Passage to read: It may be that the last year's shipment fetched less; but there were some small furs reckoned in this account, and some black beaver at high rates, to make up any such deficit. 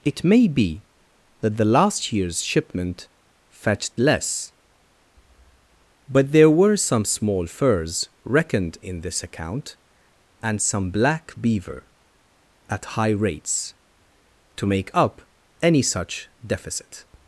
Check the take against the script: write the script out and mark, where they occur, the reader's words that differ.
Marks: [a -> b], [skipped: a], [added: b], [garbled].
It may be that the last year's shipment fetched less; but there were some small furs reckoned in this account, and some black beaver at high rates, to make up any such deficit.